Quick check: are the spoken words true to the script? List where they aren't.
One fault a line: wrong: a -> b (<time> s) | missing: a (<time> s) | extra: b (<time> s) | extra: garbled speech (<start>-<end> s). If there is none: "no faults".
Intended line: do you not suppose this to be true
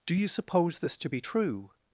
missing: not (0.3 s)